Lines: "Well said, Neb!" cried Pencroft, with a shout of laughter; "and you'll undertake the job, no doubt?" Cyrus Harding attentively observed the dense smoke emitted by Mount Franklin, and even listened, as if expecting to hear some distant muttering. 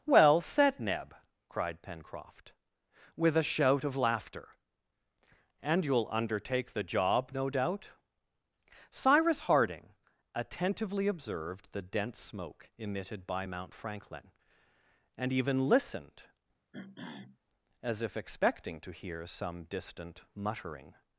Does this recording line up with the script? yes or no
yes